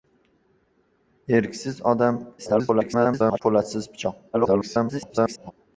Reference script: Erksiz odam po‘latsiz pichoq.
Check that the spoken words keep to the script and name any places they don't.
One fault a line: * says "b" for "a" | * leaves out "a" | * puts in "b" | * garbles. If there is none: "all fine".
* garbles
* garbles